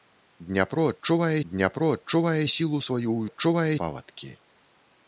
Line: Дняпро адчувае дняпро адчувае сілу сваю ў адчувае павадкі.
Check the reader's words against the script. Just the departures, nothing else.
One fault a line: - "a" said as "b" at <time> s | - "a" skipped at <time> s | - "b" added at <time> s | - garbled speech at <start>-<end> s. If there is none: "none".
none